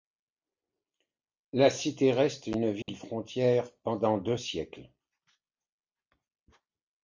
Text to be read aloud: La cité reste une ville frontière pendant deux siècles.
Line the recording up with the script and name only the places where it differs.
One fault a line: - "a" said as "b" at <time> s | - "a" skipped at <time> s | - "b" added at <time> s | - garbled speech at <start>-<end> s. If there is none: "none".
none